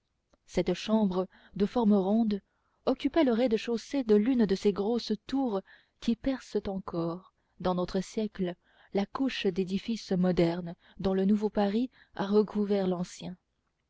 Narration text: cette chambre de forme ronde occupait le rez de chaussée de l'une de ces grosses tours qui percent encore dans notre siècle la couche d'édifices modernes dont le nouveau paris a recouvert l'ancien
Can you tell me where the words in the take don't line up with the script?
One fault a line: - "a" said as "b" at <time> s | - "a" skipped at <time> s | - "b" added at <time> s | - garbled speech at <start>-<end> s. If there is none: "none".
none